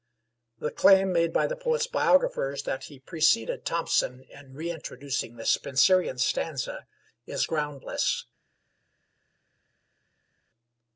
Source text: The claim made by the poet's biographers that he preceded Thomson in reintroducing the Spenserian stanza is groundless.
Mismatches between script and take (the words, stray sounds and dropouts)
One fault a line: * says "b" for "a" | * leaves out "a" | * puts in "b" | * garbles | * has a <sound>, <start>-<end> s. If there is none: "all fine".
all fine